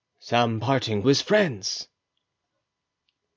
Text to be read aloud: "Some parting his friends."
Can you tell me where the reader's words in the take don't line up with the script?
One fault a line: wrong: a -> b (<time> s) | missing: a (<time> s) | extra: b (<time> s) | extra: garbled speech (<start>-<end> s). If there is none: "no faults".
no faults